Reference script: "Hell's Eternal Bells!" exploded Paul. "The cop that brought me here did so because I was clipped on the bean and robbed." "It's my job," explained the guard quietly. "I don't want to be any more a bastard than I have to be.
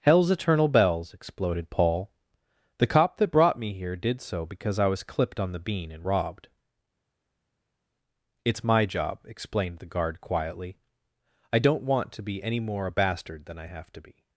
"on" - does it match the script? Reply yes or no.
yes